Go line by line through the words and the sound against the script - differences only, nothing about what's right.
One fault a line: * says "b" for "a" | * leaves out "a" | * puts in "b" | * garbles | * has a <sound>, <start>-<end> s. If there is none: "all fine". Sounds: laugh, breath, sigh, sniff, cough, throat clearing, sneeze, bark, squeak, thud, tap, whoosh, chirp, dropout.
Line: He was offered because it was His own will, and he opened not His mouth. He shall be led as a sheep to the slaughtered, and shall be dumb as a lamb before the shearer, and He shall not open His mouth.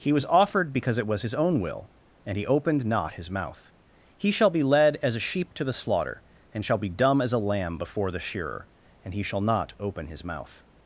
* says "slaughter" for "slaughtered"